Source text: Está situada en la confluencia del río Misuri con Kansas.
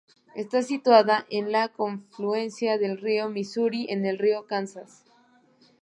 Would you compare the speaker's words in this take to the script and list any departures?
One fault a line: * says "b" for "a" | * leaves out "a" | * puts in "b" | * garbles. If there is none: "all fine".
* puts in "el río"